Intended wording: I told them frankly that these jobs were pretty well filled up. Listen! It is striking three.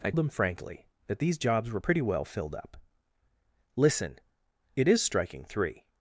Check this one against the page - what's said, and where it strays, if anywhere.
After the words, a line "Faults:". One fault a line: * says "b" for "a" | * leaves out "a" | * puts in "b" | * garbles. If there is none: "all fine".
I them frankly that these jobs were pretty well filled up. Listen! It is striking three.
Faults:
* leaves out "told"